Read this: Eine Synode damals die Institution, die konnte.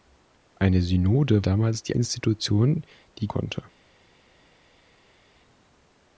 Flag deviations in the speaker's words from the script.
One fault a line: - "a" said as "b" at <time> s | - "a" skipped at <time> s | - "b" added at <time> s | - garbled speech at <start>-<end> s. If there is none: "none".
none